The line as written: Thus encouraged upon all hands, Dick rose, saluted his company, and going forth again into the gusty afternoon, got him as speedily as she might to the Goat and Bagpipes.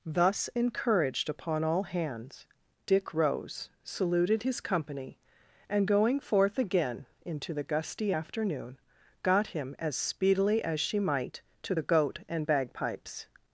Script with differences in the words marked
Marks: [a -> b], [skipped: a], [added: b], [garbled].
Thus encouraged upon all hands, Dick rose, saluted his company, and going forth again into the gusty afternoon, got him as speedily as she might to the Goat and Bagpipes.